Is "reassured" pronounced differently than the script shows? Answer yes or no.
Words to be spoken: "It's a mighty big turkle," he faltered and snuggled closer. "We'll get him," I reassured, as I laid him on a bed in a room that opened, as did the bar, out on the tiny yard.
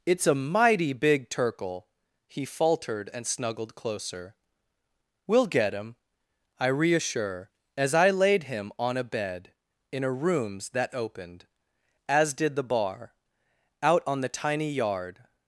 yes